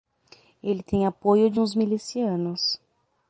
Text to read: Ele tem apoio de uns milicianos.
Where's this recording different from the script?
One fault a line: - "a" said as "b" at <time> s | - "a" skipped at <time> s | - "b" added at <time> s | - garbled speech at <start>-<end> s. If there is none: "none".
none